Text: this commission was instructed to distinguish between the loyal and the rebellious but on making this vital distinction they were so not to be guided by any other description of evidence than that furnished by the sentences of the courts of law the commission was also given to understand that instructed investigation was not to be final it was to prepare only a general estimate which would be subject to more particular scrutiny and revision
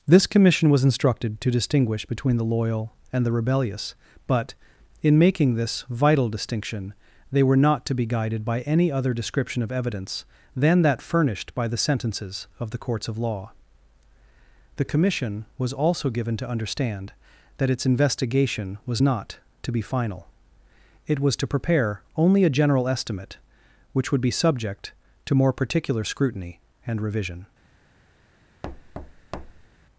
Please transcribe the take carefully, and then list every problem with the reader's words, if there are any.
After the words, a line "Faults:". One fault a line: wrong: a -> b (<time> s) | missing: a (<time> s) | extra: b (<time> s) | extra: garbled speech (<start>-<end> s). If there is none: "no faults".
this commission was instructed to distinguish between the loyal and the rebellious but in making this vital distinction they were not to be guided by any other description of evidence than that furnished by the sentences of the courts of law the commission was also given to understand that its investigation was not to be final it was to prepare only a general estimate which would be subject to more particular scrutiny and revision
Faults:
wrong: on -> in (5.0 s)
missing: so (7.6 s)
wrong: instructed -> its (17.7 s)